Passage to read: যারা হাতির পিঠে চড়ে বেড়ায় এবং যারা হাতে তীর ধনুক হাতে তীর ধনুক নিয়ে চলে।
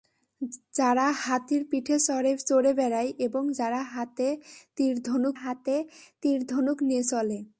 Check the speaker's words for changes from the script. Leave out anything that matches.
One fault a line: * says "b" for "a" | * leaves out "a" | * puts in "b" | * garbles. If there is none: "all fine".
all fine